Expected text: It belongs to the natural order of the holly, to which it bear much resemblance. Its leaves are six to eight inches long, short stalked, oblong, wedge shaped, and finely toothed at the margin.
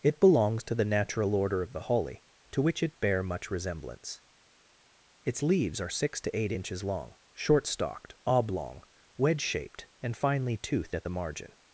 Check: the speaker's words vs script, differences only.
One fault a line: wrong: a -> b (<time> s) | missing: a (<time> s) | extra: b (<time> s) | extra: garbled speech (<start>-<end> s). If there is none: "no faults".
no faults